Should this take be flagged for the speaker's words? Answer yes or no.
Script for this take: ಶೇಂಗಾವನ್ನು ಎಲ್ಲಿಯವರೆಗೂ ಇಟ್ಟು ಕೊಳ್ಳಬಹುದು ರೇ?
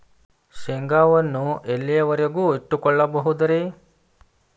no